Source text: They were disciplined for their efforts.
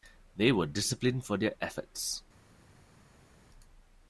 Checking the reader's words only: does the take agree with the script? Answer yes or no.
yes